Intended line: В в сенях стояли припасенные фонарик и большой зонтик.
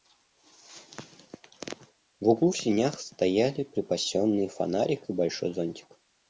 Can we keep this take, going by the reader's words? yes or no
no